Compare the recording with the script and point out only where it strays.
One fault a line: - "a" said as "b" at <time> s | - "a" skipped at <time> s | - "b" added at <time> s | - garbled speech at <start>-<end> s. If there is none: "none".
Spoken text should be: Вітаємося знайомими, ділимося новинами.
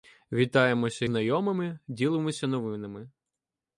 none